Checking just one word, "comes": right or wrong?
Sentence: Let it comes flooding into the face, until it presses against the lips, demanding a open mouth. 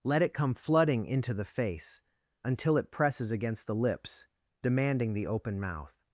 wrong